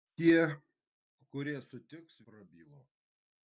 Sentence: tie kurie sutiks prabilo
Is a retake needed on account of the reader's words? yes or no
no